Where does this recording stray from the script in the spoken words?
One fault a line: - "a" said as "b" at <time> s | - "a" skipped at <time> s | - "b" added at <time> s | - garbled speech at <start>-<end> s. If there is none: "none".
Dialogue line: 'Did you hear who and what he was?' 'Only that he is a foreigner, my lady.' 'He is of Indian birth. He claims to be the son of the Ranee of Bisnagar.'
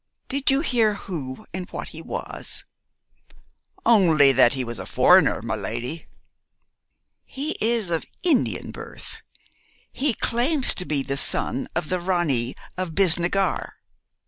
- "is" said as "was" at 4.6 s